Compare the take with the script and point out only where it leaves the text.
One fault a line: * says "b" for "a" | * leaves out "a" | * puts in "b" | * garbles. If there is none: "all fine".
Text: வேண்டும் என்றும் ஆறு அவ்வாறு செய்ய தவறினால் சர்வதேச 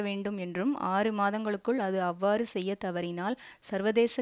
* puts in "மாதங்களுக்குள் அது"